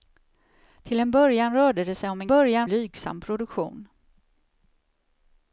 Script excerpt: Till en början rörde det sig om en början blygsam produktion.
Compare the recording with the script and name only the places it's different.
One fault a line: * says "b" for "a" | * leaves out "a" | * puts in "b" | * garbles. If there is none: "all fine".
all fine